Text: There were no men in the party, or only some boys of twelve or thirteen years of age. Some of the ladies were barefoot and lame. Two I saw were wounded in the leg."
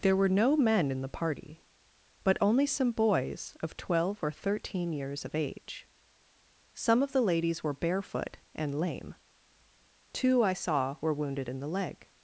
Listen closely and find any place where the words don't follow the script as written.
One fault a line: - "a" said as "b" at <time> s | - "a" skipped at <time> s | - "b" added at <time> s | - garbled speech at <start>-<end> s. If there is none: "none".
- "or" said as "but" at 2.2 s